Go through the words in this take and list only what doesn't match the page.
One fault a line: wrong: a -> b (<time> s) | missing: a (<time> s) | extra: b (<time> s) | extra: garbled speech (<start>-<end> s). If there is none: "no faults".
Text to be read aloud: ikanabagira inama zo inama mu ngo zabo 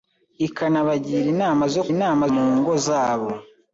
no faults